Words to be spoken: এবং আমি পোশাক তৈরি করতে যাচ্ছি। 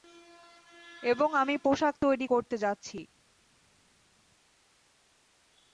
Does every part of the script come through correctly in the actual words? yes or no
yes